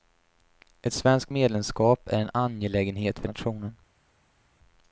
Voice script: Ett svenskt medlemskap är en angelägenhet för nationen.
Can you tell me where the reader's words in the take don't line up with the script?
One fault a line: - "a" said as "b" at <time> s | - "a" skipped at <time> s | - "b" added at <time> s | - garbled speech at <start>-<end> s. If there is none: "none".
none